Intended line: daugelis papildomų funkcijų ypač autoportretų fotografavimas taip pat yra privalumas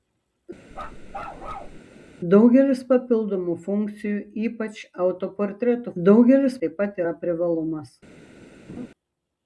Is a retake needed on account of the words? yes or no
yes